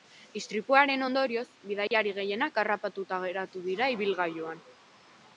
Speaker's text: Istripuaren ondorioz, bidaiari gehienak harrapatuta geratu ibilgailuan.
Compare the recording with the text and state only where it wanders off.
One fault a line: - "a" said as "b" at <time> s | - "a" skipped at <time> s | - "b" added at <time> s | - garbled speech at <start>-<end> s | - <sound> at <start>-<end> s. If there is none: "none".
- dropout at 1.9-1.9 s
- "dira" added at 3.6 s